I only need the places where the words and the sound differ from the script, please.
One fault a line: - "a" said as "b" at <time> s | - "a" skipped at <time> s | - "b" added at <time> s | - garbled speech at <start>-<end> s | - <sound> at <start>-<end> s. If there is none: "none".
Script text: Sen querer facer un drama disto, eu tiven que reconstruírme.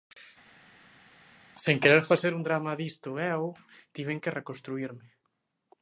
none